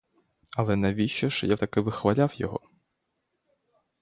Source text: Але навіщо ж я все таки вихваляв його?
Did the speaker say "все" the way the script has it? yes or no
no